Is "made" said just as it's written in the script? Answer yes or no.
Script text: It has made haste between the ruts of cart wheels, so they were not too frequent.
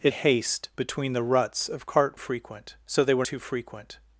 no